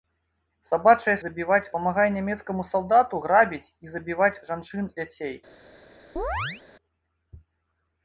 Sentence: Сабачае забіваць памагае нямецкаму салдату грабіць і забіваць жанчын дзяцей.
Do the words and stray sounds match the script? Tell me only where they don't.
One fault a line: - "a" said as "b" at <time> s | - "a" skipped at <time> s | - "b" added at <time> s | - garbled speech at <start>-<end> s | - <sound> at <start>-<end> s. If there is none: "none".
- chirp at 6.2-6.6 s